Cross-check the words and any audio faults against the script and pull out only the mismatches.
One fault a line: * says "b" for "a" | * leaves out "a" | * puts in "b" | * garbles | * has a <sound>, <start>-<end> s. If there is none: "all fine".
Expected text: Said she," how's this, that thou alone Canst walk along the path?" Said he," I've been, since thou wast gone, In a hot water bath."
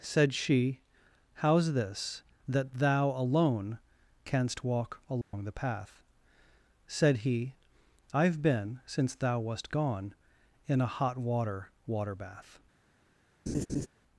* has a dropout, 5.2-5.3 s
* puts in "water"
* has a laugh, 13.5-13.9 s